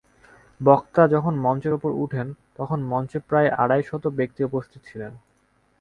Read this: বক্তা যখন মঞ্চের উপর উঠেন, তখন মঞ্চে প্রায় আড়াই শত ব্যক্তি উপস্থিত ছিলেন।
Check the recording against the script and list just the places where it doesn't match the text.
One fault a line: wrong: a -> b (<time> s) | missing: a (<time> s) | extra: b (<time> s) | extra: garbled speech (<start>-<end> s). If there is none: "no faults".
no faults